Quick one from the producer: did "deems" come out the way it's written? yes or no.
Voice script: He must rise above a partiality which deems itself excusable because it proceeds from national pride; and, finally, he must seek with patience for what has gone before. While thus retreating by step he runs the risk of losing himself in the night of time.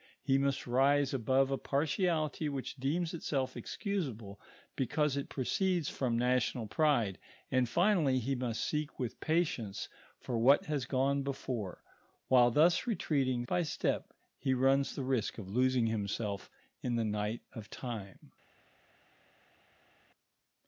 yes